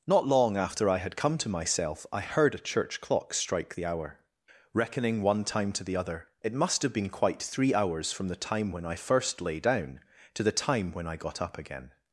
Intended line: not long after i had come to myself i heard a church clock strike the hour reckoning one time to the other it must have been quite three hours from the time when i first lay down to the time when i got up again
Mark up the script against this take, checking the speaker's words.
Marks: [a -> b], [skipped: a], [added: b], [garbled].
not long after i had come to myself i heard a church clock strike the hour reckoning one time to the other it must have been quite three hours from the time when i first lay down to the time when i got up again